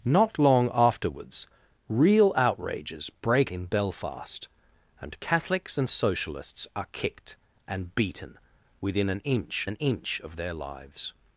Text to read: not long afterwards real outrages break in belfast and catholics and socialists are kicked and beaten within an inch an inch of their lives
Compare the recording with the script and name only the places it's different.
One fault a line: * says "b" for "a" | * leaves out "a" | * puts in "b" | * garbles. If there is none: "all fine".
all fine